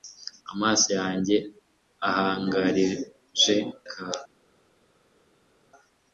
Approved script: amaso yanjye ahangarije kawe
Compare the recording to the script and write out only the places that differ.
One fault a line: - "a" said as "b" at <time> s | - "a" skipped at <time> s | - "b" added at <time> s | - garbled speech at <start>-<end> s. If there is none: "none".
none